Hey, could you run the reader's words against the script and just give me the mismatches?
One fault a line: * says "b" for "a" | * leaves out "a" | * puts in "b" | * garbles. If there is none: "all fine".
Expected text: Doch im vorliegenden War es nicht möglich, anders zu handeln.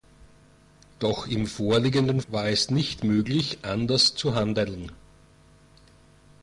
all fine